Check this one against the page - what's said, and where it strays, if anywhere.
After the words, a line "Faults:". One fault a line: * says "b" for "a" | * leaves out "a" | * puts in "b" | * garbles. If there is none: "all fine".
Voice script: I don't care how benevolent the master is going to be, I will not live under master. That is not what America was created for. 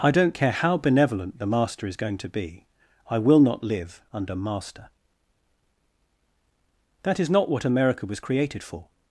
I don't care how benevolent the master is going to be, I will not live under master. That is not what America was created for.
Faults:
all fine